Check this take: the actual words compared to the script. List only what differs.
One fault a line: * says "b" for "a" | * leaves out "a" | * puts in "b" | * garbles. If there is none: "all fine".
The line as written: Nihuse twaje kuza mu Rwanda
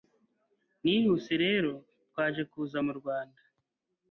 * puts in "rero"